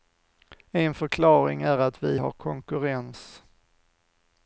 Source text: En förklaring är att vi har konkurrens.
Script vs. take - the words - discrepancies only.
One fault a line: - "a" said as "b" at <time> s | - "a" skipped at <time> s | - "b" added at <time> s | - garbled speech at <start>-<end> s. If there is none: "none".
none